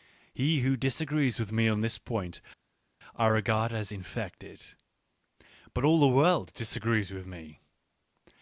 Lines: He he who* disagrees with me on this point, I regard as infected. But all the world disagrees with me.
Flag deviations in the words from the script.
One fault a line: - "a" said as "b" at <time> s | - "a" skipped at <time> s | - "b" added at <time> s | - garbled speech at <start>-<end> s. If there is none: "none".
- "he" skipped at 0.6 s